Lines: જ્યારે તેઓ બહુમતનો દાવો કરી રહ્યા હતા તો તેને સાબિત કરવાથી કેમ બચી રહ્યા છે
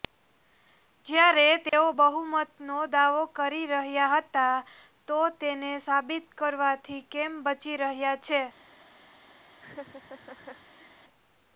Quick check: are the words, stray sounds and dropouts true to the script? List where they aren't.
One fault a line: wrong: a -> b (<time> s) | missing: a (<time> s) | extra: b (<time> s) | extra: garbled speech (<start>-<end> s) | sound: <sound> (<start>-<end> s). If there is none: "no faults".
sound: dropout (1.7-1.7 s)
sound: laugh (9.6-10.9 s)